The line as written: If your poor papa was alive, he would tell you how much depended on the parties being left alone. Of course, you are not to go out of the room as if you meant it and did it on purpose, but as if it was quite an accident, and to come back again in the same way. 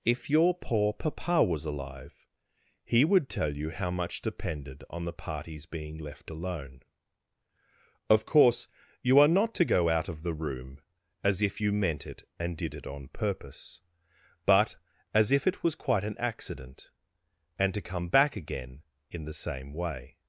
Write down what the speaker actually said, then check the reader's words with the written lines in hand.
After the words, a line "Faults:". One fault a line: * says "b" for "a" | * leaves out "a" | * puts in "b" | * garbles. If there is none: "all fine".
If your poor papa was alive, he would tell you how much depended on the parties being left alone. Of course, you are not to go out of the room as if you meant it and did it on purpose, but as if it was quite an accident, and to come back again in the same way.
Faults:
all fine